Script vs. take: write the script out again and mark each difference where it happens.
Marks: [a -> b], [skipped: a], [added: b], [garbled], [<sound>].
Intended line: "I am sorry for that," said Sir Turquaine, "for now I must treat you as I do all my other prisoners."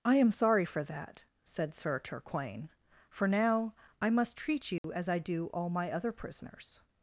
"I am sorry for that," said Sir Turquaine, "for now I must treat you [dropout] as I do all my other prisoners."